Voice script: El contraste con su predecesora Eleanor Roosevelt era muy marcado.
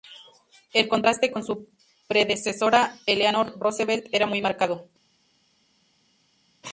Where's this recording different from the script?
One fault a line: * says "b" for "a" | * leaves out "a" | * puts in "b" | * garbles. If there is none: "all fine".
all fine